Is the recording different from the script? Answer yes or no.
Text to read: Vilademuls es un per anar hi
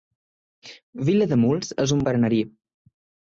no